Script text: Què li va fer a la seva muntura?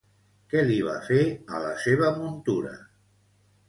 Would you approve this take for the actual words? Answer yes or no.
yes